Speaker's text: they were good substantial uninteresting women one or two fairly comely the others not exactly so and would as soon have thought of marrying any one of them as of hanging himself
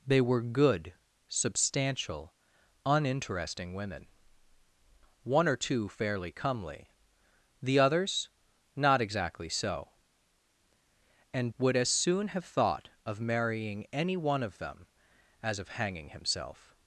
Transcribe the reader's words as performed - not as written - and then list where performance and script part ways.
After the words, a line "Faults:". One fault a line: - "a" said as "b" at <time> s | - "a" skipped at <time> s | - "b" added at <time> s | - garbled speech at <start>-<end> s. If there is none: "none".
they were good substantial uninteresting women one or two fairly comely the others not exactly so and would as soon have thought of marrying any one of them as of hanging himself
Faults:
none